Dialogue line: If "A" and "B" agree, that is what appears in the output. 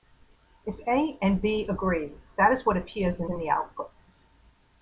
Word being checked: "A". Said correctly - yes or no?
yes